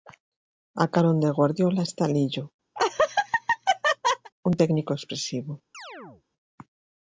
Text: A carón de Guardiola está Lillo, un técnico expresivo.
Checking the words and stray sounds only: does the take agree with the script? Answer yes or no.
no